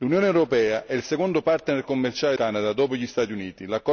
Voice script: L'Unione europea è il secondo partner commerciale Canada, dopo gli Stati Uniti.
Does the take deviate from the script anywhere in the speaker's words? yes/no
no